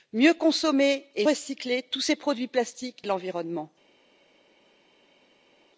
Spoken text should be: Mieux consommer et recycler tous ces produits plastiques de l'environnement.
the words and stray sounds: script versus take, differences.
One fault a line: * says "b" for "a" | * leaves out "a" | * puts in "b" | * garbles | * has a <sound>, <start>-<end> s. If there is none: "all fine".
all fine